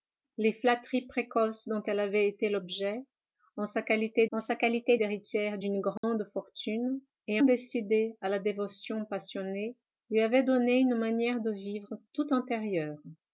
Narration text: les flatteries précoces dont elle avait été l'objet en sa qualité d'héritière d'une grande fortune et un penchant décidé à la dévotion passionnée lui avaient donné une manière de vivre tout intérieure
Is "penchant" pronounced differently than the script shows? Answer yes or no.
yes